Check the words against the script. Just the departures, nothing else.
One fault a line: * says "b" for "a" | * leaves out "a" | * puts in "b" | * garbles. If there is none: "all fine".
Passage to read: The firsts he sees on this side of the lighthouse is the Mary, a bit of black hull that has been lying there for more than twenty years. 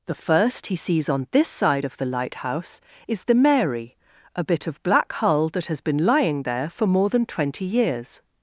* says "first" for "firsts"